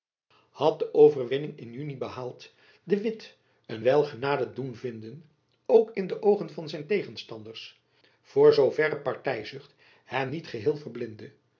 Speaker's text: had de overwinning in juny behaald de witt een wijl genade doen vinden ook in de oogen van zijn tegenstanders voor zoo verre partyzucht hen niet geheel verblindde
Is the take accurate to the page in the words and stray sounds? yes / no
yes